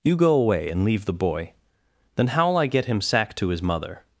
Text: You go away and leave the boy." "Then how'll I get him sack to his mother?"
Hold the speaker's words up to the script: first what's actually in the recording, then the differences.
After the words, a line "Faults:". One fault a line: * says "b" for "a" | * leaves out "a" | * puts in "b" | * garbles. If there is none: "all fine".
You go away and leave the boy." "Then how'll I get him sack to his mother?"
Faults:
all fine